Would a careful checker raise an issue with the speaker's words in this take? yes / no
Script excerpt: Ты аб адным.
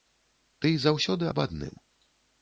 yes